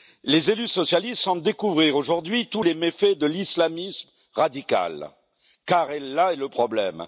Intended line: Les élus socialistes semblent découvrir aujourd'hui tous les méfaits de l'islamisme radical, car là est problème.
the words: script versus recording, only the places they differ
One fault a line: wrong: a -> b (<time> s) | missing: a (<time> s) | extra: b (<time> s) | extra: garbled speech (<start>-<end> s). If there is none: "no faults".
extra: le (6.4 s)